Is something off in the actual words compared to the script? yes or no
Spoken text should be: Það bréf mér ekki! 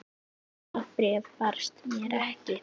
yes